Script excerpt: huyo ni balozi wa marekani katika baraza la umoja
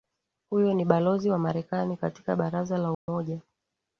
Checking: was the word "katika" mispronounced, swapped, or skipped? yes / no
no